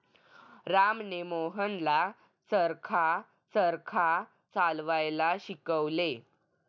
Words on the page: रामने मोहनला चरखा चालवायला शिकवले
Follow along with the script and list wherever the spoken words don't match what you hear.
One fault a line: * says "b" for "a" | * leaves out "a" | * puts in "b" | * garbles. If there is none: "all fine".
* puts in "चरखा"